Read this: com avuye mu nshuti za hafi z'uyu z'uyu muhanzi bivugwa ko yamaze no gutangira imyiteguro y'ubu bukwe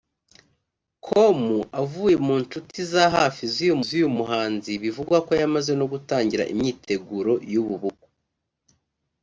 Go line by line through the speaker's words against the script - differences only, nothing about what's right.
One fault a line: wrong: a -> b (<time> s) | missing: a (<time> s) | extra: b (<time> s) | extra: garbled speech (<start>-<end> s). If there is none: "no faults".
no faults